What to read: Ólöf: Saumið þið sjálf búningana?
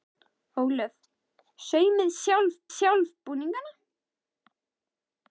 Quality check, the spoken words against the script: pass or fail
fail